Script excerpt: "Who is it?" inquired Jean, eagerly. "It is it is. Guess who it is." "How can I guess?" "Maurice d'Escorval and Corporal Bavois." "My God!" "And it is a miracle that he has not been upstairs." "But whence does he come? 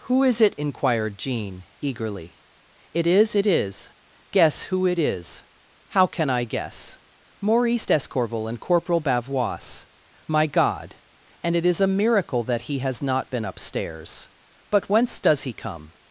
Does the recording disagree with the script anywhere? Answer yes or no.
no